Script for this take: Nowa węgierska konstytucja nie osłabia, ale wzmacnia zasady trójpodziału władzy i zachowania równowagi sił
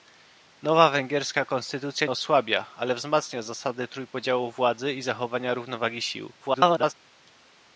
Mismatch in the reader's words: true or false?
true